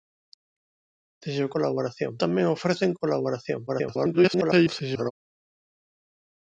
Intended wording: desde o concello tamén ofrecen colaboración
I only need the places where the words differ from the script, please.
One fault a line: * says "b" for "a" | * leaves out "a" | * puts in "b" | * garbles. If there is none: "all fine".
* says "colaboración" for "concello"
* garbles